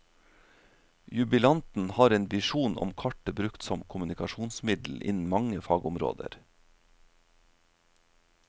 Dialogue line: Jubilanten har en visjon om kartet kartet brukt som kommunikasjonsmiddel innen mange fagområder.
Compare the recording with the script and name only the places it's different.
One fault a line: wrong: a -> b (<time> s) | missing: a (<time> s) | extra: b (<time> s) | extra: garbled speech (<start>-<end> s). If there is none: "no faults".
missing: kartet (3.4 s)